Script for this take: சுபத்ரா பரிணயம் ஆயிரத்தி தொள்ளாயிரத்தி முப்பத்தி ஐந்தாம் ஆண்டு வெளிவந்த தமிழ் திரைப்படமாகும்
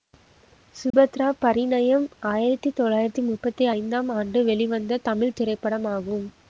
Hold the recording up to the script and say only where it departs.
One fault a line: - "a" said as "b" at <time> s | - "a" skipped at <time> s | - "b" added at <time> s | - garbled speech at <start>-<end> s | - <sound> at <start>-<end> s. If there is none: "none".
- dropout at 0.9-0.9 s